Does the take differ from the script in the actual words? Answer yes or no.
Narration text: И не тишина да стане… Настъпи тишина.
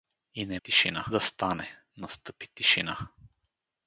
no